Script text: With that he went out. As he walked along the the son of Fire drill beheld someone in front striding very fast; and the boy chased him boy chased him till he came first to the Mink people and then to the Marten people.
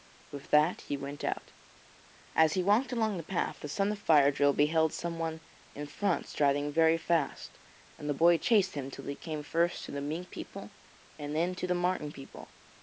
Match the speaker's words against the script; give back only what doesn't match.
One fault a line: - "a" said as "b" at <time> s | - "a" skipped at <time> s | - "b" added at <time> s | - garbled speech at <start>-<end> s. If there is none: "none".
- "path" added at 3.2 s
- "boy chased him" skipped at 8.9 s